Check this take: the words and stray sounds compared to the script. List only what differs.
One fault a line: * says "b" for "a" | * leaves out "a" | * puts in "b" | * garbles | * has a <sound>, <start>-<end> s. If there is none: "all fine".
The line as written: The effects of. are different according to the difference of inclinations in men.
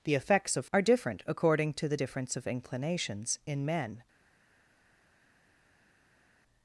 all fine